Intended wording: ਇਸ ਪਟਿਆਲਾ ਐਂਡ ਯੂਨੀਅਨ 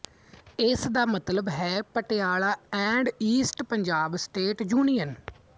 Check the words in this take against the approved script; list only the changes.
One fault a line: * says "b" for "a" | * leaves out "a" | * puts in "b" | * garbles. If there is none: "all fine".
* puts in "ਦਾ ਮਤਲਬ ਹੈ"
* puts in "ਈਸਟ ਪੰਜਾਬ ਸਟੇਟ"